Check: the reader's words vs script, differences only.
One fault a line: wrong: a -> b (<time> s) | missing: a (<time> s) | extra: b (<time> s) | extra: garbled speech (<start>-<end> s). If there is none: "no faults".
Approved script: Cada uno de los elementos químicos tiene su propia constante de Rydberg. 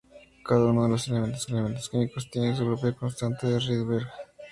extra: elementos (1.5 s)